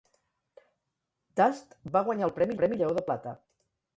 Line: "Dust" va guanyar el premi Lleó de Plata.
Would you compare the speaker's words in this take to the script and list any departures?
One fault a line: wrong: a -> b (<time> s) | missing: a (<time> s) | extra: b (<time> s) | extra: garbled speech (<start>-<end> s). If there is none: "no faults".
extra: premi (2.6 s)